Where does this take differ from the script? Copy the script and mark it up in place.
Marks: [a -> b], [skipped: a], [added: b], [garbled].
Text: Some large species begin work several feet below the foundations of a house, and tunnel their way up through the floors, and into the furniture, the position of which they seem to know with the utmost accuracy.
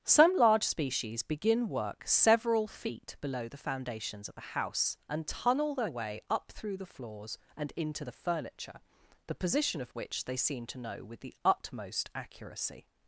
Some large species begin work several feet below the foundations of a house, and tunnel their way up through the floors, and into the furniture, the position of which they seem to know with the utmost accuracy.